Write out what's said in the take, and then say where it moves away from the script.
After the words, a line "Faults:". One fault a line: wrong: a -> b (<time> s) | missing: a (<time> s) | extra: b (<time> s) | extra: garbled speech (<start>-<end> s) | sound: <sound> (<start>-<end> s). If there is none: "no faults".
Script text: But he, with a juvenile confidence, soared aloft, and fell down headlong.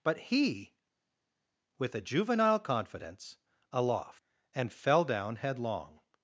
But he, with a juvenile confidence, aloft, and fell down headlong.
Faults:
missing: soared (3.4 s)